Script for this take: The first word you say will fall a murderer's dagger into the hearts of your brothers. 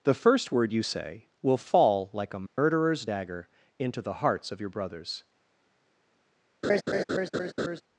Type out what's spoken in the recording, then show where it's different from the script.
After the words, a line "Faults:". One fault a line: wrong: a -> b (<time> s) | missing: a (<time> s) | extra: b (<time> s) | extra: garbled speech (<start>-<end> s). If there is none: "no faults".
The first word you say will fall like a murderer's dagger into the hearts of your brothers.
Faults:
extra: like (2.1 s)